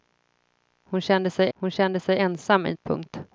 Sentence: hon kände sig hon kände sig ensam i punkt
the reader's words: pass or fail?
pass